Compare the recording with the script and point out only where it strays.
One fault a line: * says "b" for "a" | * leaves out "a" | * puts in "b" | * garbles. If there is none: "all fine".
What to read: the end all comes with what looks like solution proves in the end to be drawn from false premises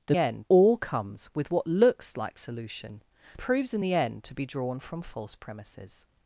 all fine